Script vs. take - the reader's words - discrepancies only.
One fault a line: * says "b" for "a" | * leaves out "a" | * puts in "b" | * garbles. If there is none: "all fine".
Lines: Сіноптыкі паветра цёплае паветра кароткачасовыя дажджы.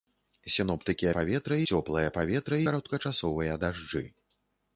all fine